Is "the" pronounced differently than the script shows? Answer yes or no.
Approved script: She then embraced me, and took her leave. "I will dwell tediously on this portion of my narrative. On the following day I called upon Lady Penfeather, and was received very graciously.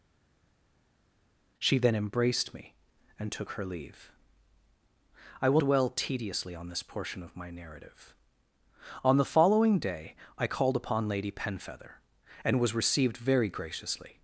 no